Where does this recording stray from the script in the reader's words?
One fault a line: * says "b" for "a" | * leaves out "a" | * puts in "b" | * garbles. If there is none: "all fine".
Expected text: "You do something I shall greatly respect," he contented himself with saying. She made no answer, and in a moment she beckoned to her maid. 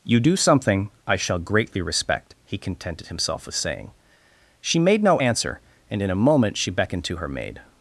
all fine